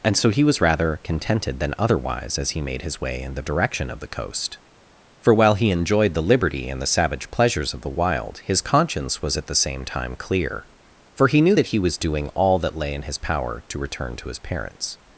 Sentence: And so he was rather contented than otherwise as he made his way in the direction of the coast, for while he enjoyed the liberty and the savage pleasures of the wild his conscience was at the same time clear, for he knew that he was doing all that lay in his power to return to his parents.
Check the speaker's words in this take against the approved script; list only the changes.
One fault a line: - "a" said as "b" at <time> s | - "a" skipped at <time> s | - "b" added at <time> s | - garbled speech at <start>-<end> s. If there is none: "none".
none